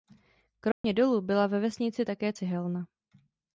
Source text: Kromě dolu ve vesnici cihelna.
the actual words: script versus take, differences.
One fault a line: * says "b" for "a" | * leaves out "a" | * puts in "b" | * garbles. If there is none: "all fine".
* puts in "byla"
* puts in "také"